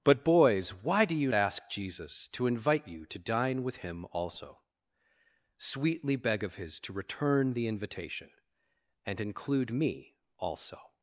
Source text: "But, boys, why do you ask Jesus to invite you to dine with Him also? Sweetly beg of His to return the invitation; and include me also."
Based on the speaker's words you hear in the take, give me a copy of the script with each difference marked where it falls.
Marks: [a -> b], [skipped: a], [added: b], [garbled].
"But, boys, why do you ask Jesus to invite you to dine with Him also? Sweetly beg of His to return the invitation; and include me also."